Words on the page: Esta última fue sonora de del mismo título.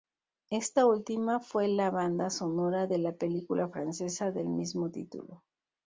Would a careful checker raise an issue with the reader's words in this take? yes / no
yes